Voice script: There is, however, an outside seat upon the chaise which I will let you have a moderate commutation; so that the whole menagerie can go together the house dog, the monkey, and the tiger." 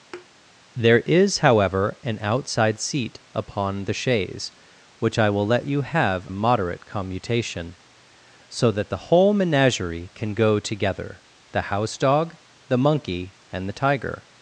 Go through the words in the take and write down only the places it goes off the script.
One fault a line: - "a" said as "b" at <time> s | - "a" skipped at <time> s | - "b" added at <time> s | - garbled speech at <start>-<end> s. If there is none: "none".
none